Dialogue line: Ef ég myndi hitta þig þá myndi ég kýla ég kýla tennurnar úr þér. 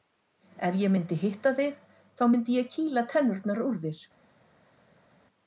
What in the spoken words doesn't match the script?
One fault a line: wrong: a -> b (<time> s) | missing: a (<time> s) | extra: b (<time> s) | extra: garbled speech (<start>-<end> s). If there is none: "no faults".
missing: ég kýla (3.1 s)